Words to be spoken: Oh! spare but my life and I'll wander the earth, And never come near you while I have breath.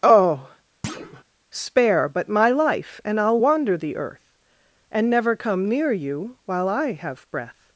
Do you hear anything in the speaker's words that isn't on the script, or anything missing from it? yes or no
no